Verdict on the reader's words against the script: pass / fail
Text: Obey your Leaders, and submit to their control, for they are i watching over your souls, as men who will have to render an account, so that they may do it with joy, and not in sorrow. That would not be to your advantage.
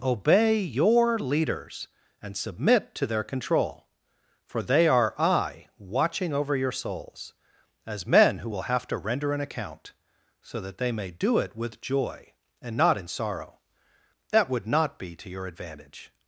pass